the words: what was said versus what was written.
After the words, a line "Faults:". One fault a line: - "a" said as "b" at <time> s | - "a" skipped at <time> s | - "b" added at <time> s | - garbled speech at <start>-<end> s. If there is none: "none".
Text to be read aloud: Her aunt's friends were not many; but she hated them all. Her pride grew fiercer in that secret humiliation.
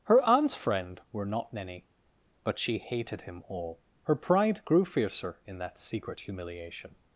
Her aunt's friend were not many; but she hated him all. Her pride grew fiercer in that secret humiliation.
Faults:
- "friends" said as "friend" at 0.6 s
- "them" said as "him" at 3.2 s